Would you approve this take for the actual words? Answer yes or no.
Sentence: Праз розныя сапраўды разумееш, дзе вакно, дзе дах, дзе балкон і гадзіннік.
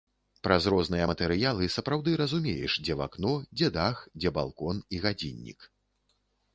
no